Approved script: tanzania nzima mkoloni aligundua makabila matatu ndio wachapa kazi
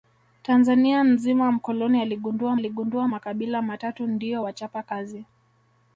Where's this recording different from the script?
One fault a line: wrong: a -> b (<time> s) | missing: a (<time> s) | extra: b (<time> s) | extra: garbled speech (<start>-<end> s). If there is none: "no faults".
extra: aligundua (2.5 s)